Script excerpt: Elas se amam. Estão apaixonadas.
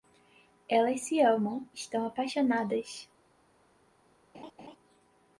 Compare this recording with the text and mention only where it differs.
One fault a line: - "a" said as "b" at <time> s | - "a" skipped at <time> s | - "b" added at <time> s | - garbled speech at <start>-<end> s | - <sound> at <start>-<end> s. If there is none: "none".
- laugh at 4.3-4.8 s